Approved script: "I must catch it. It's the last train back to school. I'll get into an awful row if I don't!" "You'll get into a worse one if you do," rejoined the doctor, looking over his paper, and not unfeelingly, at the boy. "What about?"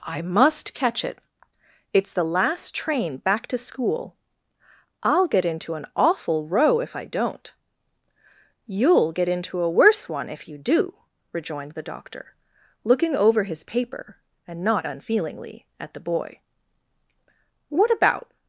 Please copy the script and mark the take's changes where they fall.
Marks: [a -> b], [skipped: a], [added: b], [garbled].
"I must catch it. It's the last train back to school. I'll get into an awful row if I don't!" "You'll get into a worse one if you do," rejoined the doctor, looking over his paper, and not unfeelingly, at the boy. "What about?"